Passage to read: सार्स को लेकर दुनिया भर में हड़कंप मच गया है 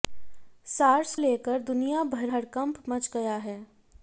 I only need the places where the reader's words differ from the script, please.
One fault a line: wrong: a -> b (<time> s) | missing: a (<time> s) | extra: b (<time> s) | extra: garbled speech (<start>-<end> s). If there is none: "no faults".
missing: को (1.1 s)
missing: में (2.3 s)